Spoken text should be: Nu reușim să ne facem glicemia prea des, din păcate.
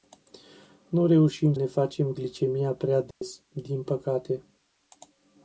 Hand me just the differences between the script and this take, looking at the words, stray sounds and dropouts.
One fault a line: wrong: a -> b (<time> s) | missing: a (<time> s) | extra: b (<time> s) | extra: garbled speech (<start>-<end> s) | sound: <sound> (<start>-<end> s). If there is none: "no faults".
missing: să (1.5 s)
sound: dropout (3.1-3.2 s)